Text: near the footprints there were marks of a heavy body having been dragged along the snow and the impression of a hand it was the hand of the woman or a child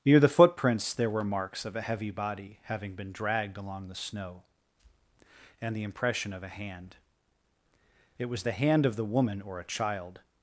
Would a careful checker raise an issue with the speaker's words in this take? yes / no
no